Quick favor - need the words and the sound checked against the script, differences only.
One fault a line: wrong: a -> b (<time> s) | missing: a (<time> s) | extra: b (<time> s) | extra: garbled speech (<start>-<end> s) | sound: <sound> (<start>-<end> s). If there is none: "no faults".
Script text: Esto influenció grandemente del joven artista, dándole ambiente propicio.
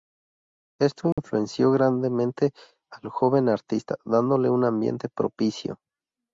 sound: dropout (1.1-1.2 s)
wrong: del -> al (2.9 s)
extra: un (4.5 s)